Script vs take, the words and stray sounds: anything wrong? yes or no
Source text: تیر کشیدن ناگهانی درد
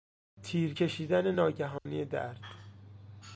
yes